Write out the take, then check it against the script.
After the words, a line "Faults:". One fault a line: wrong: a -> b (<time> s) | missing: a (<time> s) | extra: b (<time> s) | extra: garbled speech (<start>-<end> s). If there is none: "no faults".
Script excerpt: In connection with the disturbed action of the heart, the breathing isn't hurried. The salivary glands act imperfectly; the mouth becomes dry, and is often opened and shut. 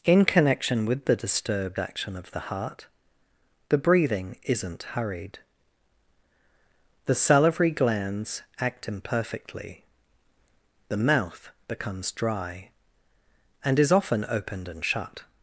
In connection with the disturbed action of the heart, the breathing isn't hurried. The salivary glands act imperfectly; the mouth becomes dry, and is often opened and shut.
Faults:
no faults